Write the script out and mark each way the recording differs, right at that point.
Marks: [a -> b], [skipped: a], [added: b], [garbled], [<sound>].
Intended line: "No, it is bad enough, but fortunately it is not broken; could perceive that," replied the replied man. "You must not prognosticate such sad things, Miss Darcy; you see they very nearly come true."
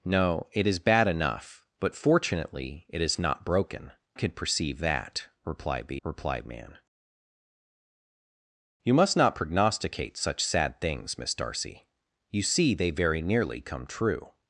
"No, it is bad enough, but fortunately it is not broken; could perceive that," replied the replied man. "You must not prognosticate such sad things, Miss Darcy; you see they very nearly come true."